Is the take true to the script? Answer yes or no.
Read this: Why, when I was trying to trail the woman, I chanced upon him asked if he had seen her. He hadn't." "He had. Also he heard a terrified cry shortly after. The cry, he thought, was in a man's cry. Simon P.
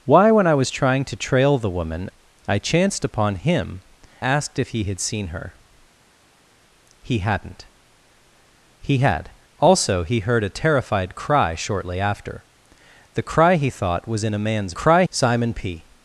yes